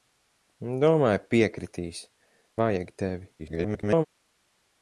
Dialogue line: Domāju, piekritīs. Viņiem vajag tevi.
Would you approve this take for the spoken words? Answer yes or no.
no